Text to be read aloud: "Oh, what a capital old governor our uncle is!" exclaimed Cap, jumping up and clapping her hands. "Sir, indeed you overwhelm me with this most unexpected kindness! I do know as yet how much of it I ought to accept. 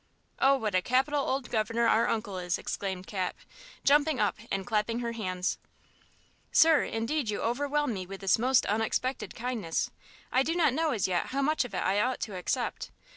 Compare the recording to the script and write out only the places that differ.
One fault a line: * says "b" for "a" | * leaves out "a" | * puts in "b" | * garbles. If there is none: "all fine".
* puts in "not"